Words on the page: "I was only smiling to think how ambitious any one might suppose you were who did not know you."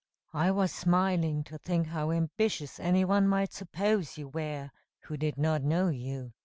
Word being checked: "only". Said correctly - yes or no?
no